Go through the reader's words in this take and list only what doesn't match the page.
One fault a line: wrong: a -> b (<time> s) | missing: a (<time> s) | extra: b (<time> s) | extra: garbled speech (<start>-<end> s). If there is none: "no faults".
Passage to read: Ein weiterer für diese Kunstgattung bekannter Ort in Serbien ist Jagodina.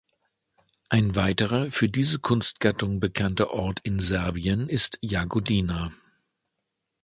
no faults